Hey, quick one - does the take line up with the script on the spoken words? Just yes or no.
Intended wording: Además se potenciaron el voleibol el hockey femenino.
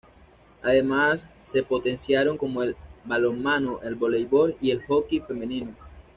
no